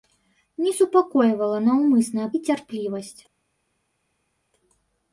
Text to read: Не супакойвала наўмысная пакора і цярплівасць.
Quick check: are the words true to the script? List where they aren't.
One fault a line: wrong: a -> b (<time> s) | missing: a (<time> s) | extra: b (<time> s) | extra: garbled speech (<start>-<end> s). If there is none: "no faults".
missing: пакора (2.3 s)